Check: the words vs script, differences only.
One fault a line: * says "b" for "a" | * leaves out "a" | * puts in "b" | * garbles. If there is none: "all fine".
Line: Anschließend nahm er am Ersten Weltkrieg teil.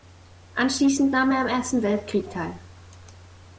all fine